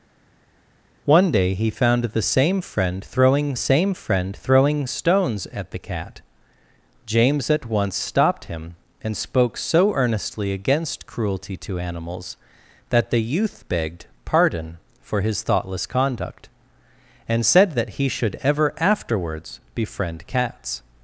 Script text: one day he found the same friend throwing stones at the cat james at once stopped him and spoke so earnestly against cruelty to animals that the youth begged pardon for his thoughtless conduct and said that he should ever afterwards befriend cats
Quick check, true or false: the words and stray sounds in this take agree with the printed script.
false